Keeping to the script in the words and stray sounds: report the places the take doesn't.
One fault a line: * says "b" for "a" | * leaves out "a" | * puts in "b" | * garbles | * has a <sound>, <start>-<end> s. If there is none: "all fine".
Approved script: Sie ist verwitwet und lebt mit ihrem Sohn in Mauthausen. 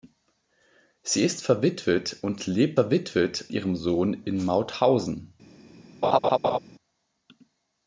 * says "verwitwet" for "mit"
* has a laugh, 6.0-6.6 s